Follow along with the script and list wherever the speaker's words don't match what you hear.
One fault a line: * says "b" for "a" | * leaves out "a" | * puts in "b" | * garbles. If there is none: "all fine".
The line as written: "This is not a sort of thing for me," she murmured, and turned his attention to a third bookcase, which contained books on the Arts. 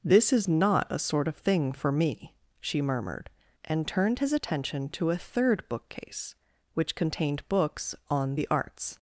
all fine